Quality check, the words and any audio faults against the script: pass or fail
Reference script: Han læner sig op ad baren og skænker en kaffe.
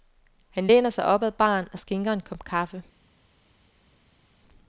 fail